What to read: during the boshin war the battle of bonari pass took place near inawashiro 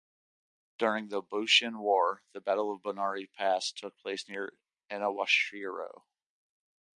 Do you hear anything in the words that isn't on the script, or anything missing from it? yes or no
no